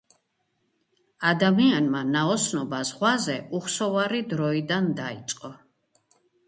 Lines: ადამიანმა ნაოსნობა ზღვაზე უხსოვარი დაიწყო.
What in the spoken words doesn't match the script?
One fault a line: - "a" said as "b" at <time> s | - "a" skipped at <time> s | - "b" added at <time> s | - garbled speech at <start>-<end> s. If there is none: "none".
- "დროიდან" added at 4.4 s